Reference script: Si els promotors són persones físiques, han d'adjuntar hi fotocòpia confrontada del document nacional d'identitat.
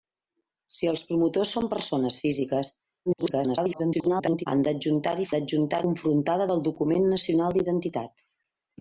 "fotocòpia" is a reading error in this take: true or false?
true